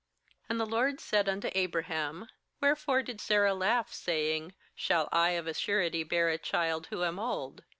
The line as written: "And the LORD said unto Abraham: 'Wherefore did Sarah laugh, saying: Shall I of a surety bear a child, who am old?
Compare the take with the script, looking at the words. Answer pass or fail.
pass